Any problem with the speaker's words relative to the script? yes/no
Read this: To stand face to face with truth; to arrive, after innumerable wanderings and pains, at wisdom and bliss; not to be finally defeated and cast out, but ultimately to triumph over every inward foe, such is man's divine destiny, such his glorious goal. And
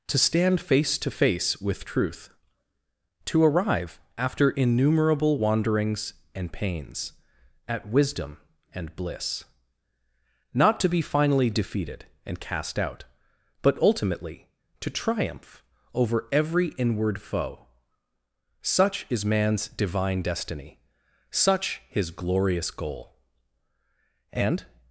no